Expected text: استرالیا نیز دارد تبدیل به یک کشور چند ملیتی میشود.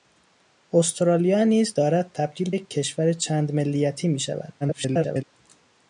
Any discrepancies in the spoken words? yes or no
yes